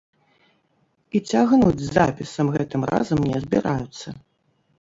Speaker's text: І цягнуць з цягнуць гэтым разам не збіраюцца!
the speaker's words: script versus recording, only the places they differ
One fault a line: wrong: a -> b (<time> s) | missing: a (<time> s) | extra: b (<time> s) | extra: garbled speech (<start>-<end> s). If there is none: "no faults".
wrong: цягнуць -> запісам (2.0 s)